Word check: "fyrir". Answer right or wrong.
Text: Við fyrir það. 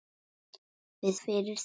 right